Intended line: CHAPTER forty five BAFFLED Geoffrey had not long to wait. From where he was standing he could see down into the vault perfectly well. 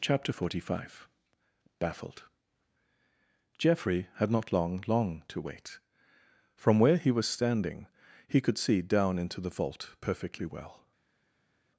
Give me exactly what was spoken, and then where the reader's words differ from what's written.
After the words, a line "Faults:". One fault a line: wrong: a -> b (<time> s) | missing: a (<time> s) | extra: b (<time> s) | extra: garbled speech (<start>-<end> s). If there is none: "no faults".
CHAPTER forty five BAFFLED Geoffrey had not long long to wait. From where he was standing he could see down into the vault perfectly well.
Faults:
extra: long (4.9 s)